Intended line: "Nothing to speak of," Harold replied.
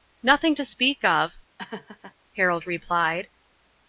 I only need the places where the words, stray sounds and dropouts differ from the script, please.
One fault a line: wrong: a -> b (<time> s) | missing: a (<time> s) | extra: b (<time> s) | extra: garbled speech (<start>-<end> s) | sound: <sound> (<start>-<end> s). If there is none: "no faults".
sound: laugh (1.6-2.1 s)